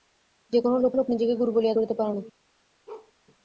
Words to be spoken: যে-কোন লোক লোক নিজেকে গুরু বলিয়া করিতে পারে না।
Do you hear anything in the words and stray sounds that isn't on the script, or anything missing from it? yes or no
yes